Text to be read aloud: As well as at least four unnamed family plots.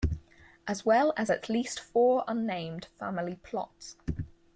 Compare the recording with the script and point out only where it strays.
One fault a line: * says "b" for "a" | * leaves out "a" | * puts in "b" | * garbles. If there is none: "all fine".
all fine